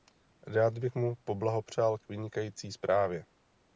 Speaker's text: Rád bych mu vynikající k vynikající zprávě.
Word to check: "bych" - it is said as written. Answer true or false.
true